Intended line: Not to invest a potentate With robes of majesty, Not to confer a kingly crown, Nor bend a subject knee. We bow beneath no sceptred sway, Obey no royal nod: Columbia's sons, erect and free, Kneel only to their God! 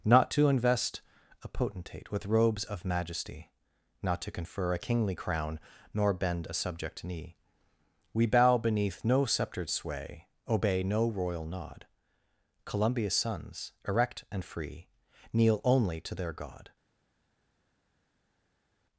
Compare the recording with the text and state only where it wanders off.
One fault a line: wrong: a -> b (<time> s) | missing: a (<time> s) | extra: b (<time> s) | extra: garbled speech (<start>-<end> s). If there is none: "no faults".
no faults